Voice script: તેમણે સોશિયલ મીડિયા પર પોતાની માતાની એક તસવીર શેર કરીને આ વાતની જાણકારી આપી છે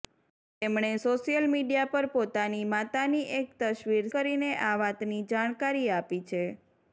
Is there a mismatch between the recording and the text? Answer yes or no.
yes